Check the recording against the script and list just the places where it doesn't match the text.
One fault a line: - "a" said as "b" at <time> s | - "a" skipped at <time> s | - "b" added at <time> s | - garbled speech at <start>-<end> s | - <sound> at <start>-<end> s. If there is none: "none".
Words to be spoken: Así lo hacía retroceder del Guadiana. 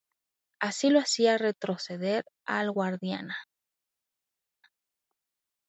- "del" said as "al" at 2.5 s